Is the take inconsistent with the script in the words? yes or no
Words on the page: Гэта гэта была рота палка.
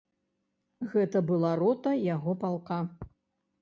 yes